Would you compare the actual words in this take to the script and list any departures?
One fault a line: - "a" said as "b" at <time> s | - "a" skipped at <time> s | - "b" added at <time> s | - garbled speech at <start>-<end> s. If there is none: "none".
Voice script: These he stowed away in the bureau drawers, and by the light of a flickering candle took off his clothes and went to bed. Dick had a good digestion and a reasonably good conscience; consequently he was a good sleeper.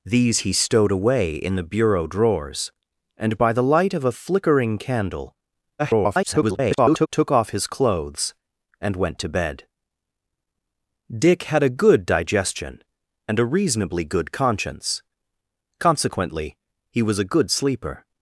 - garbled speech at 5.8-7.1 s